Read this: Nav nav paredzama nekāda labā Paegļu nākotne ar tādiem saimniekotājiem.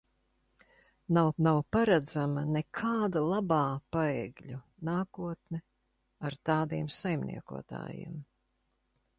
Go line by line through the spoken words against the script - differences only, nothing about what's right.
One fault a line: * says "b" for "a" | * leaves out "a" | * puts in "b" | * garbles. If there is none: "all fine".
all fine